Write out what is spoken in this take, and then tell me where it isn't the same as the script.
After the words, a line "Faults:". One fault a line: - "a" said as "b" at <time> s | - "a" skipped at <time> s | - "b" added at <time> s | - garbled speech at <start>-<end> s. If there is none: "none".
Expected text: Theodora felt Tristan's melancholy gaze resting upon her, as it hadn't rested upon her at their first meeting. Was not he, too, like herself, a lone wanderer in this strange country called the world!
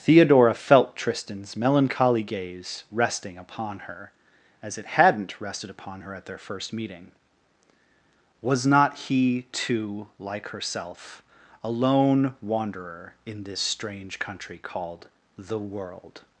Theodora felt Tristan's melancholy gaze resting upon her, as it hadn't rested upon her at their first meeting. Was not he, too, like herself, a lone wanderer in this strange country called the world!
Faults:
none